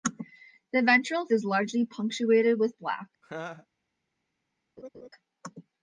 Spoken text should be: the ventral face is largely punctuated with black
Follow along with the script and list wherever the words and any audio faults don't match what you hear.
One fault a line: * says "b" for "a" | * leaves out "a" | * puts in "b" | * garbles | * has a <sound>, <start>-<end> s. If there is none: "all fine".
* leaves out "face"
* has a laugh, 3.2-3.7 s
* has a laugh, 4.8-5.1 s